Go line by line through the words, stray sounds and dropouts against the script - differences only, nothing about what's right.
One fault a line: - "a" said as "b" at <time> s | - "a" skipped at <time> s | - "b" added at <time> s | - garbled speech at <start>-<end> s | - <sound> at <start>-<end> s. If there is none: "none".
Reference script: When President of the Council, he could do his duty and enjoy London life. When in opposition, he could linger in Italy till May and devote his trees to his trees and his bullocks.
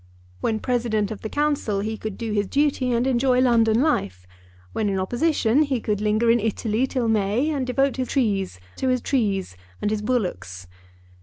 none